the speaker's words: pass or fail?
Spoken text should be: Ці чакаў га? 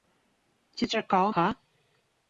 pass